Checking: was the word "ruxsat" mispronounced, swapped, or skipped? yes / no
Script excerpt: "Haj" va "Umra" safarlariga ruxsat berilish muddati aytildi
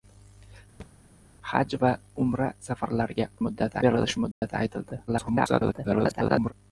yes